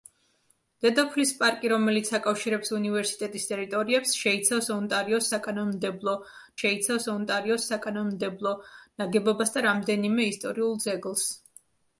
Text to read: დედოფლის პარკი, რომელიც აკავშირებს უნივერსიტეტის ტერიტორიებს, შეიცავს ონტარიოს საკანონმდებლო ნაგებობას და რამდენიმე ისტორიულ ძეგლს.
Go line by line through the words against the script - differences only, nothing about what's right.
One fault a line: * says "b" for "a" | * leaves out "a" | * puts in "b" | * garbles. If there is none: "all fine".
* puts in "შეიცავს ონტარიოს საკანონმდებლო"